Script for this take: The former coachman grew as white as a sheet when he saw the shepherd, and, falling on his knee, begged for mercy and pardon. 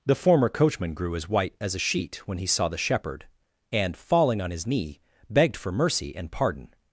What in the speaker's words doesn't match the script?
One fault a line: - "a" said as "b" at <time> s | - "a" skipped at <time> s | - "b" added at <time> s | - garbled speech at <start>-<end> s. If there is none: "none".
none